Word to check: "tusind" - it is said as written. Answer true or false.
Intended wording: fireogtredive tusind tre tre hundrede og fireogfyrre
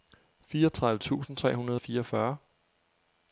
true